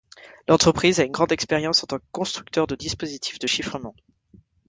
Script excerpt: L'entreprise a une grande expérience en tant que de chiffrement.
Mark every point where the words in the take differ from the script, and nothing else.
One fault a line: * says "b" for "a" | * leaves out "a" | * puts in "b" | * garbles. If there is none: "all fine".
* puts in "constructeur de dispositifs"